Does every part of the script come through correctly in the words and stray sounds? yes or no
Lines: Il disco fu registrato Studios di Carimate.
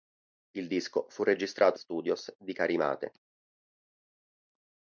yes